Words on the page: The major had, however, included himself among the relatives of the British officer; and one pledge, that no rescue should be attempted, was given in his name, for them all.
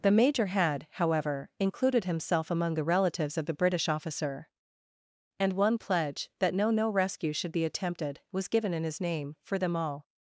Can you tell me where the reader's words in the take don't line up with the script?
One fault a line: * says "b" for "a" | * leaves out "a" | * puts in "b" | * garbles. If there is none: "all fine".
* puts in "no"